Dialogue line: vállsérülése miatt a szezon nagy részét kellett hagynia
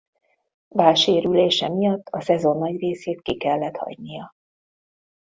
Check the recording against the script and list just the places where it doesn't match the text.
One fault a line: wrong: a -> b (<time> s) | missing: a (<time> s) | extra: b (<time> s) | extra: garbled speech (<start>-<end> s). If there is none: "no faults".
extra: ki (3.2 s)